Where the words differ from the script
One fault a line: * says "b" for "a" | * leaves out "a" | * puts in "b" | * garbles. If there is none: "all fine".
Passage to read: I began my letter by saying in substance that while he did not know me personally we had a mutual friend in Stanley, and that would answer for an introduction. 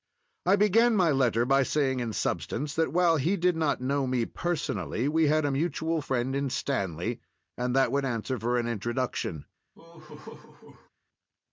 all fine